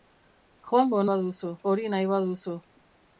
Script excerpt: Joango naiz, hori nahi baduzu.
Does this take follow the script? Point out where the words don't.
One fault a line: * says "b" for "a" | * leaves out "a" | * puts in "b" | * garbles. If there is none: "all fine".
* says "baduzu" for "naiz"